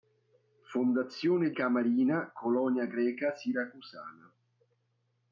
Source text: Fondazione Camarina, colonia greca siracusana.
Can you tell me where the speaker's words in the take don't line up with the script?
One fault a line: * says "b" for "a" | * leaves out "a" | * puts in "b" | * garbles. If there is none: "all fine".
all fine